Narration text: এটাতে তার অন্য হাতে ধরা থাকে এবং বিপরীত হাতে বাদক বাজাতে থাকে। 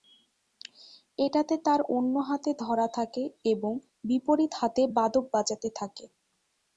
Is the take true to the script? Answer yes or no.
yes